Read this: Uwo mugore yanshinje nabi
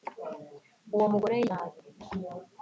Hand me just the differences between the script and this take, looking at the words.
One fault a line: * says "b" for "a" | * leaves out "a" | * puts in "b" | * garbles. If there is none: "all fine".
* leaves out "yanshinje"